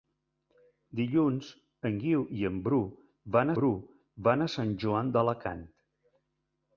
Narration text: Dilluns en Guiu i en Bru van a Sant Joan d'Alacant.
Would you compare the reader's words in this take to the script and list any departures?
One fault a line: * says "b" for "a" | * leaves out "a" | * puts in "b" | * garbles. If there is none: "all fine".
* puts in "Bru van"